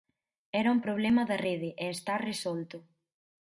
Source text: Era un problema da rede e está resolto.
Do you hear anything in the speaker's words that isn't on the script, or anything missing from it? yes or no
no